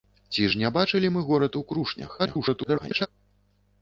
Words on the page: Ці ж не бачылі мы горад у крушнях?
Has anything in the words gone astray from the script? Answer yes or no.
yes